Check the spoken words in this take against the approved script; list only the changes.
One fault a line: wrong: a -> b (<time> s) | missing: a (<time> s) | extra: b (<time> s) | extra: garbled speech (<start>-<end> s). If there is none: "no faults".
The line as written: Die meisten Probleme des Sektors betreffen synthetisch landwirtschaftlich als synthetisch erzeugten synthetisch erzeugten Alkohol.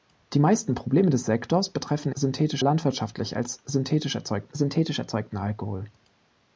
no faults